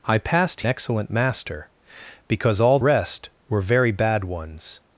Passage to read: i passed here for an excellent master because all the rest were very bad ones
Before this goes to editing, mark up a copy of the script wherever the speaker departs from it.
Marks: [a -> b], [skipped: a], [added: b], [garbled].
i passed [skipped: here for an] excellent master because all [skipped: the] rest were very bad ones